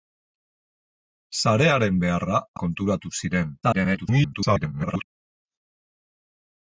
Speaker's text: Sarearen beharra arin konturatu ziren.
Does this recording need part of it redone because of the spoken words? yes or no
yes